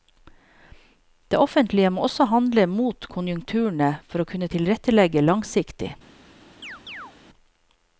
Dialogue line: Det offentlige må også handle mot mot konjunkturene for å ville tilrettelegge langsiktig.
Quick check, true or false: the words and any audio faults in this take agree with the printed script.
false